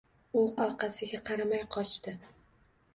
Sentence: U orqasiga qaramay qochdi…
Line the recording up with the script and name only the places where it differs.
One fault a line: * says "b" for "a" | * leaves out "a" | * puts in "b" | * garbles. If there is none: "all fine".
all fine